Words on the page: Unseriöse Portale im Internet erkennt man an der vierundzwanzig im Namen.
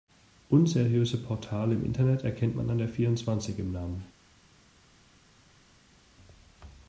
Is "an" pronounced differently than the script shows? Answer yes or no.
no